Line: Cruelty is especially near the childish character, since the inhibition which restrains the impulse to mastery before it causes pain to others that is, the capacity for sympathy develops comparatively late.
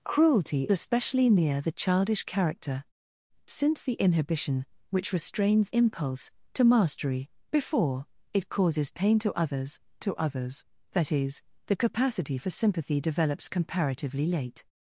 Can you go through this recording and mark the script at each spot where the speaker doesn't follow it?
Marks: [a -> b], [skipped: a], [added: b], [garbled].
Cruelty [skipped: is] especially near the childish character, since the inhibition which restrains [skipped: the] impulse to mastery before it causes pain to others [added: to others] that is, the capacity for sympathy develops comparatively late.